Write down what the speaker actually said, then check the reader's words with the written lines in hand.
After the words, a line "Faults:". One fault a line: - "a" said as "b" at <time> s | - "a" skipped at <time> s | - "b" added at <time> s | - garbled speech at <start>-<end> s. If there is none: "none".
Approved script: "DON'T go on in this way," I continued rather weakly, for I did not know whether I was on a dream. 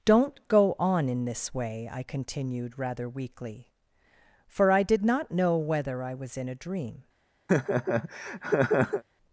"DON'T go on in this way," I continued rather weakly, for I did not know whether I was in a dream.
Faults:
- "on" said as "in" at 6.4 s